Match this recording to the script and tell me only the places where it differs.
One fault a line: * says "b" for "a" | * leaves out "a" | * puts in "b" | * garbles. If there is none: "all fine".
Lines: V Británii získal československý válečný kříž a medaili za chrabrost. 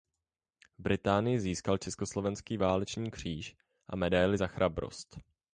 all fine